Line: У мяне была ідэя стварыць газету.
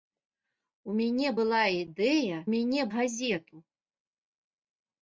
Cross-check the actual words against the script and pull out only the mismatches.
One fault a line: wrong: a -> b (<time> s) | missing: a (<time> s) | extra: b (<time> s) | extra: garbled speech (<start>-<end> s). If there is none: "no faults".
wrong: стварыць -> мяне (2.5 s)